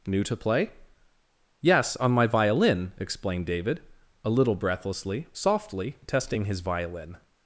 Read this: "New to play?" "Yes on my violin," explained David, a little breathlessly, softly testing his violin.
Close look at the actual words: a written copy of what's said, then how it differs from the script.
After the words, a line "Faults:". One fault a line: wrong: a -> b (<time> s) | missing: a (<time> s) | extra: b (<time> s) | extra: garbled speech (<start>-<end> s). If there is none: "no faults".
"New to play?" "Yes on my violin," explained David, a little breathlessly, softly testing his violin.
Faults:
no faults